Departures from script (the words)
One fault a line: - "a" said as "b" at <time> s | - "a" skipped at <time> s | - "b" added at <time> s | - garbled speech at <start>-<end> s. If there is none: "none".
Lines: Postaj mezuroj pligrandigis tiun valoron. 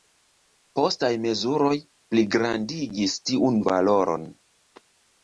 none